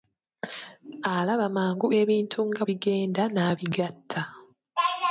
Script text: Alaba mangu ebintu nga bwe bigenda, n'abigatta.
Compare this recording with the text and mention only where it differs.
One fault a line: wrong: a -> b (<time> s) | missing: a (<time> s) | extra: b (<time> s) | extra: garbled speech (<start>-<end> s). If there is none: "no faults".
missing: bwe (2.6 s)